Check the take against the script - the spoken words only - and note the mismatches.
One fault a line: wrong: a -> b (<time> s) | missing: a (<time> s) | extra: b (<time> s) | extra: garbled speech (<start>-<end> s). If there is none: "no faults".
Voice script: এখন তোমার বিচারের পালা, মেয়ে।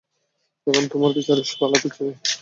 extra: পিচ্চি (1.8 s)